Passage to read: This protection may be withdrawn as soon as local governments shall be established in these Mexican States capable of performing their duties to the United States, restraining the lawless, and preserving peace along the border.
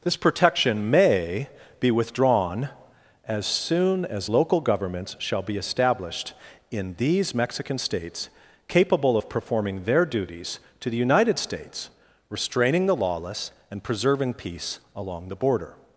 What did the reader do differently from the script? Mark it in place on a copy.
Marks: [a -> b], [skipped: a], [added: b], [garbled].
This protection may be withdrawn as soon as local governments shall be established in these Mexican States capable of performing their duties to the United States, restraining the lawless, and preserving peace along the border.